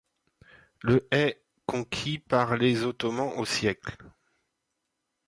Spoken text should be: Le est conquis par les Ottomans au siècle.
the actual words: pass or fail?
pass